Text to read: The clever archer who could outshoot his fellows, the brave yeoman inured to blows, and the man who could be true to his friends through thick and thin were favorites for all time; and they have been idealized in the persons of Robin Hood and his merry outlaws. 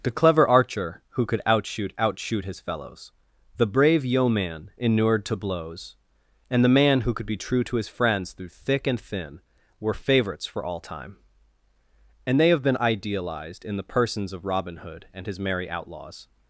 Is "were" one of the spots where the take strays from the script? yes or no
no